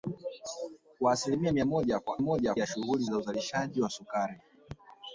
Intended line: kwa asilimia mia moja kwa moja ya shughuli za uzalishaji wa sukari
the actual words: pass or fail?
pass